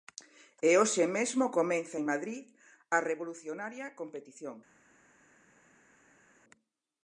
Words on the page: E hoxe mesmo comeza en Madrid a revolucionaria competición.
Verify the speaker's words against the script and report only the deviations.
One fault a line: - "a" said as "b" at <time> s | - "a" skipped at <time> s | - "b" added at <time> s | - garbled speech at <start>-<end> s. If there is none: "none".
none